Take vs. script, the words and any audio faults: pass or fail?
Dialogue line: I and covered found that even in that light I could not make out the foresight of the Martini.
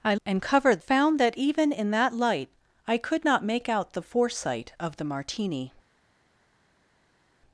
pass